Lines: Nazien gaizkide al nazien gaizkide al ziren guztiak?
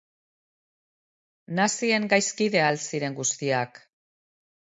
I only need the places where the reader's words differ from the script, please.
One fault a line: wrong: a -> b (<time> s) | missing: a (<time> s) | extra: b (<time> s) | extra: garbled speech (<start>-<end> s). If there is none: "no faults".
missing: nazien gaizkide al (2.8 s)